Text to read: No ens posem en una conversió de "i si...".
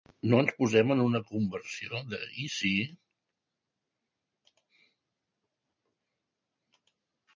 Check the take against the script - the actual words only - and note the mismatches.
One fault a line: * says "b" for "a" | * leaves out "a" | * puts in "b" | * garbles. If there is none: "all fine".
all fine